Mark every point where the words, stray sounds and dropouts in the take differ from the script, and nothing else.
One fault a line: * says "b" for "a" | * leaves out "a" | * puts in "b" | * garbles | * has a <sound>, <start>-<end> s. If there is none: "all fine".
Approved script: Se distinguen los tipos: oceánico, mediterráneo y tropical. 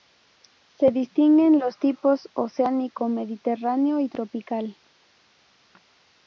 all fine